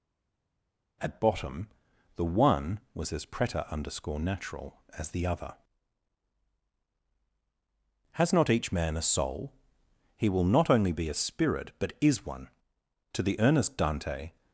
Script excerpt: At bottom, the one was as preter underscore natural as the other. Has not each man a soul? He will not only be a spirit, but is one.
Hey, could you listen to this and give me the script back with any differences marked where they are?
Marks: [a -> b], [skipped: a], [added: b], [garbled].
At bottom, the one was as preter underscore natural as the other. Has not each man a soul? He will not only be a spirit, but is one. [added: To the earnest Dante]